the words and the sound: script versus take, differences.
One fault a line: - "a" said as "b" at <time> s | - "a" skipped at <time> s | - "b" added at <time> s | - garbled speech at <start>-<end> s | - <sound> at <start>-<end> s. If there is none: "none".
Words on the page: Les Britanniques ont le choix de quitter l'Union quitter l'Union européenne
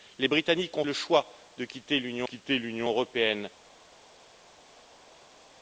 none